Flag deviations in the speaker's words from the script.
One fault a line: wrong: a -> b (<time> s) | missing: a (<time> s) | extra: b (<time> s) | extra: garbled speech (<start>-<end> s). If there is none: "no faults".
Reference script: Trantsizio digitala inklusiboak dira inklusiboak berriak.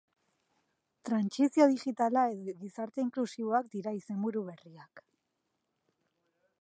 extra: edo Gizarte (2.4 s)
wrong: inklusiboak -> izenburu (4.0 s)